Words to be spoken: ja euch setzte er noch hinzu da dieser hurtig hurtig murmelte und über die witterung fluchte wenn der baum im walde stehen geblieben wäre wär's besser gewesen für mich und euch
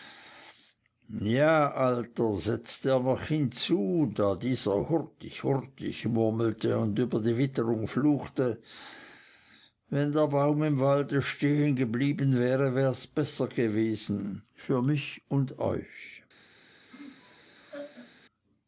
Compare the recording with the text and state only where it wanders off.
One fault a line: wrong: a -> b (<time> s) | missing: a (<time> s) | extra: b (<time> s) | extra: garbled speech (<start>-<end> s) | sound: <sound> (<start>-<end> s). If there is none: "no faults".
wrong: euch -> alter (1.9 s)
sound: laugh (16.9-18.2 s)